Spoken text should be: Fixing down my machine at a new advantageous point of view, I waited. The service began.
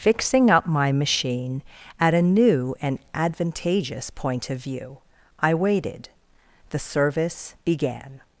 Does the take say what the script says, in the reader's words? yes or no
no